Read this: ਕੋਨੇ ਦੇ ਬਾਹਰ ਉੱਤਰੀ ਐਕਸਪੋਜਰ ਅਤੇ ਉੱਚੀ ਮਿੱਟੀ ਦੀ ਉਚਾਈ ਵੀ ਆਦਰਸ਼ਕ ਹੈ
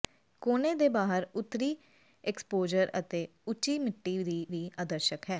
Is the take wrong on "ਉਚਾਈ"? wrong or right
wrong